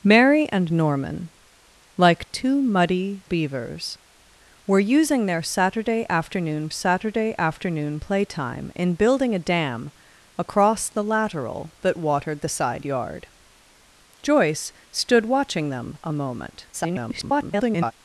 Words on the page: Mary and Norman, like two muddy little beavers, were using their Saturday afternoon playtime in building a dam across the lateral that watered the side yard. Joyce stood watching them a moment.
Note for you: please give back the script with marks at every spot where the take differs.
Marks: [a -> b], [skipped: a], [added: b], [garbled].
Mary and Norman, like two muddy [skipped: little] beavers, were using their Saturday afternoon [added: Saturday afternoon] playtime in building a dam across the lateral that watered the side yard. Joyce stood watching them a moment. [garbled]